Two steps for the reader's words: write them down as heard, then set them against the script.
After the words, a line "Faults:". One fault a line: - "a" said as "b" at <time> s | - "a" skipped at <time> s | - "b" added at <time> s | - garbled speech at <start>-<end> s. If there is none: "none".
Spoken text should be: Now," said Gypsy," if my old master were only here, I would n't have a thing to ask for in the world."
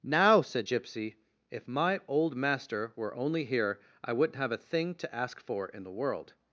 Now," said Gypsy," if my old master were only here, I would n't have a thing to ask for in the world."
Faults:
none